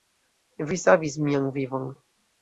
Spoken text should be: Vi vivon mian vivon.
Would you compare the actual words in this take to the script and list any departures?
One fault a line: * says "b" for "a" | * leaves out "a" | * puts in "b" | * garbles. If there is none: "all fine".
* says "savis" for "vivon"